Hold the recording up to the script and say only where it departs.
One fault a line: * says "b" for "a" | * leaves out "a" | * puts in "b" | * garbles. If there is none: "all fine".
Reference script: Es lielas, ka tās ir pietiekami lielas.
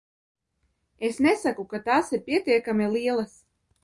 * says "nesaku" for "lielas"